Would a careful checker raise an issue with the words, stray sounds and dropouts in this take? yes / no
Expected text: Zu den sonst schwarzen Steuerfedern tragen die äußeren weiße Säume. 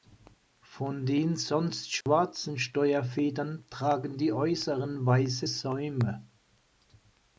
yes